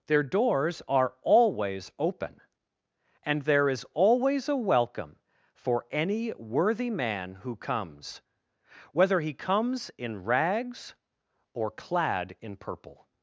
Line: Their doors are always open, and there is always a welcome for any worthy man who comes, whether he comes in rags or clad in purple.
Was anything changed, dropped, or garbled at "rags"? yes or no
no